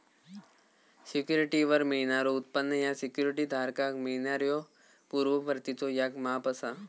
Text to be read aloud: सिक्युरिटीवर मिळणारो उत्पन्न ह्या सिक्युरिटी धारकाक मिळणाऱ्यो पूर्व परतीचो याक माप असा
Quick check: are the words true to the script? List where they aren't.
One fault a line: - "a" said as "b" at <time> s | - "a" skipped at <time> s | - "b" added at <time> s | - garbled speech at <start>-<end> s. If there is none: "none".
none